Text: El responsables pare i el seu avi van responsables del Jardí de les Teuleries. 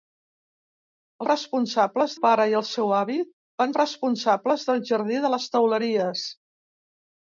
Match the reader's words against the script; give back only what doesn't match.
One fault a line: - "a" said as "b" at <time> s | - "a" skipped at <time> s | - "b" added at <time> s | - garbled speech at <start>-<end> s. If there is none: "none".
none